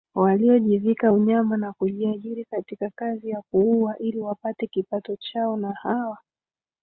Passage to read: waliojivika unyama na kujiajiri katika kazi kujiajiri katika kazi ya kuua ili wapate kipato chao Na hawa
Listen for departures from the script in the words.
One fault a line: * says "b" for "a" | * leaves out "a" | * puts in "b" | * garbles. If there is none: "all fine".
* leaves out "kujiajiri katika kazi"